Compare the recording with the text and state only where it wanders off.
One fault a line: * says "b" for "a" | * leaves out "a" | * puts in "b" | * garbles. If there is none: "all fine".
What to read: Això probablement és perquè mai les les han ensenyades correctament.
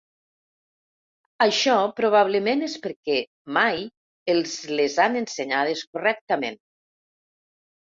* says "els" for "les"